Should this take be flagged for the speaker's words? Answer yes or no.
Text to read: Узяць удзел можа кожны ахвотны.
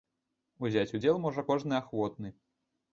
no